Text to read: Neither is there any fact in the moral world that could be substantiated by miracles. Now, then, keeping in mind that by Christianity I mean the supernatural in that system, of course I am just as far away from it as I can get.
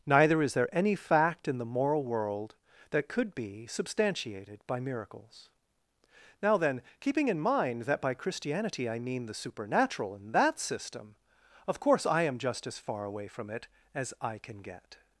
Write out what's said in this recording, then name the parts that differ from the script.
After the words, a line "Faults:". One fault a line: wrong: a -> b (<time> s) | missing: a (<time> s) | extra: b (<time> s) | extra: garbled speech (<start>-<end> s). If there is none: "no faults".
Neither is there any fact in the moral world that could be substantiated by miracles. Now, then, keeping in mind that by Christianity I mean the supernatural in that system, of course I am just as far away from it as I can get.
Faults:
no faults